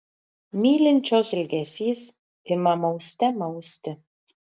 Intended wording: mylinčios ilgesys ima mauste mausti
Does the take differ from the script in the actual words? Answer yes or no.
no